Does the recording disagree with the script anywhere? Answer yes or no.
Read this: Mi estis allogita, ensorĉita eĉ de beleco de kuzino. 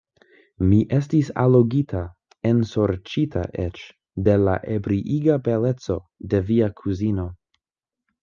yes